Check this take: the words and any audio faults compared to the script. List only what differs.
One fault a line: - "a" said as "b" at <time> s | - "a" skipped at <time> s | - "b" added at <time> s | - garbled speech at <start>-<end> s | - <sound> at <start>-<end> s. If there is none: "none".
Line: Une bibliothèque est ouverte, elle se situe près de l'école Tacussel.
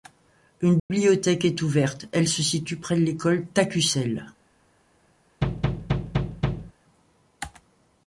- dropout at 0.8-0.9 s
- thud at 5.4-6.7 s